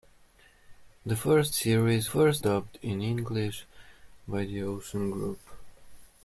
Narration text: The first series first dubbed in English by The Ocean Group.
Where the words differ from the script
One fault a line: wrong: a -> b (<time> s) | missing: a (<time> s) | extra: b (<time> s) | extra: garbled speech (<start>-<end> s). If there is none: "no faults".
no faults